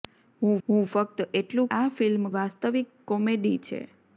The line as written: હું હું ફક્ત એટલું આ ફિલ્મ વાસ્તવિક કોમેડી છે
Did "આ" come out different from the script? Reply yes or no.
no